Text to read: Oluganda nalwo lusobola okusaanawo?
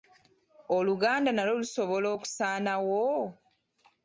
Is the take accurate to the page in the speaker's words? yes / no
yes